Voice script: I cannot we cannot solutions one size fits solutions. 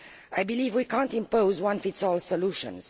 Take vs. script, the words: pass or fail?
fail